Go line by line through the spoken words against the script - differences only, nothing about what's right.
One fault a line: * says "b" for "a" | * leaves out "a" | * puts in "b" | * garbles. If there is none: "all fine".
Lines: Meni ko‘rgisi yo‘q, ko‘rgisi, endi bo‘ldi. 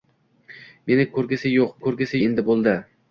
all fine